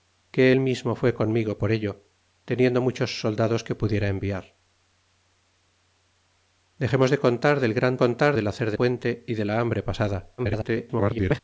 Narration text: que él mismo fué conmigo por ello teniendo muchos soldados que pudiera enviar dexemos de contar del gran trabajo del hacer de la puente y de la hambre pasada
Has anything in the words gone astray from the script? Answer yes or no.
yes